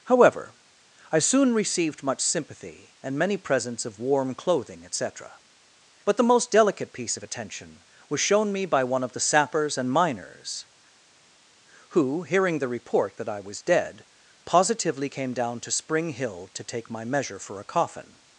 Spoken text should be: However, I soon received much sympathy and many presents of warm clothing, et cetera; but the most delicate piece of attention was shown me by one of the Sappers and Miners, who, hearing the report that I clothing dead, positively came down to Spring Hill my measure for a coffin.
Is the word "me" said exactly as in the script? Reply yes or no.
yes